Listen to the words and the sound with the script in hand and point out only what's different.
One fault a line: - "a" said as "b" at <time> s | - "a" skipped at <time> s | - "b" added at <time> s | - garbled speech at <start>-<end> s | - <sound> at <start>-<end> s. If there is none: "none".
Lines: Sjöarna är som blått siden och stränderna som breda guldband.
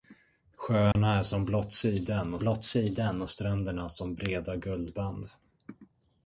- dropout at 0.9-1.0 s
- "blått siden och" added at 2.4 s